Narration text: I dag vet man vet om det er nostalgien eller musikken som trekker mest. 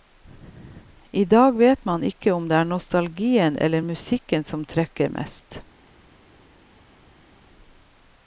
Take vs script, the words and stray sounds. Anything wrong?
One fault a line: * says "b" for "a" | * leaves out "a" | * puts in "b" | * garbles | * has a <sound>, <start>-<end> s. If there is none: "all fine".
* says "ikke" for "vet"